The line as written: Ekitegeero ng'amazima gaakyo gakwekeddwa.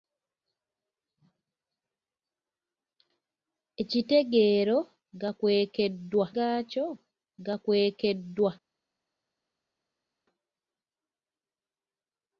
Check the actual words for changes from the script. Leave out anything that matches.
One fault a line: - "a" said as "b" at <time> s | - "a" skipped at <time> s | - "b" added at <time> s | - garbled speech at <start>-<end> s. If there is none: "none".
- "ng'amazima" said as "gakwekeddwa" at 5.2 s